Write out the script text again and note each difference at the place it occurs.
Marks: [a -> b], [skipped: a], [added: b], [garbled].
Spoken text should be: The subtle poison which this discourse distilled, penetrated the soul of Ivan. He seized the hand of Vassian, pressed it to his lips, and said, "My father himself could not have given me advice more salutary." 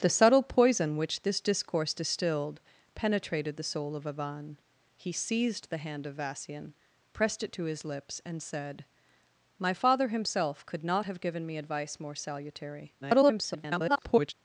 The subtle poison which this discourse distilled, penetrated the soul of Ivan. He seized the hand of Vassian, pressed it to his lips, and said, "My father himself could not have given me advice more salutary." [garbled]